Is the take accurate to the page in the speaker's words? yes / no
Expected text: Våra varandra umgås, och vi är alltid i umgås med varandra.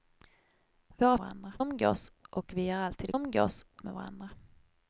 yes